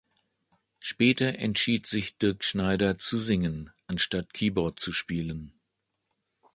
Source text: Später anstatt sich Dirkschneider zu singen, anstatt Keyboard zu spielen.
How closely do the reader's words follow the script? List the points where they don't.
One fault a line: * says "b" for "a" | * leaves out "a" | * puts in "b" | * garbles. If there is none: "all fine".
* says "entschied" for "anstatt"